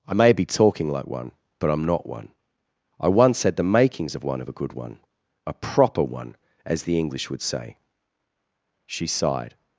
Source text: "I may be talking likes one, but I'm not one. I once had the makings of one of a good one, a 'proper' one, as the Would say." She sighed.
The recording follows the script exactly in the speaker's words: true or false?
false